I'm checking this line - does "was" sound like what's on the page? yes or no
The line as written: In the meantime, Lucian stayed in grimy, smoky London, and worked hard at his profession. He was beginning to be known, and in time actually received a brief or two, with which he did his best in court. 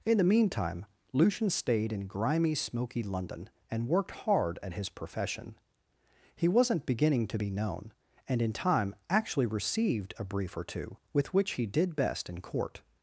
no